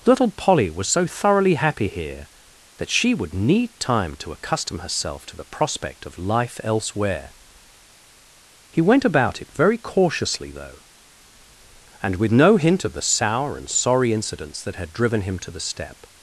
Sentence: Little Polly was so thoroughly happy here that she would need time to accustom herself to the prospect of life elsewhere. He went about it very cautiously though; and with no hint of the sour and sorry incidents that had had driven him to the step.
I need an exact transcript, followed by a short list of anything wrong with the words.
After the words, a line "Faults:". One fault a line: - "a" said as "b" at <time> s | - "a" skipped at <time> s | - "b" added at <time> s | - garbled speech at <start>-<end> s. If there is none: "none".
Little Polly was so thoroughly happy here that she would need time to accustom herself to the prospect of life elsewhere. He went about it very cautiously though; and with no hint of the sour and sorry incidents that had driven him to the step.
Faults:
- "had" skipped at 14.9 s